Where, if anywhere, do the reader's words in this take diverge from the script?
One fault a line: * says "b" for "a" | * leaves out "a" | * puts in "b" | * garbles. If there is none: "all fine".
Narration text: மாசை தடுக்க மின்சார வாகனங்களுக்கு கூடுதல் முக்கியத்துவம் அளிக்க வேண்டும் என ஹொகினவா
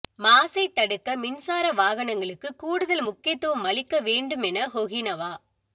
all fine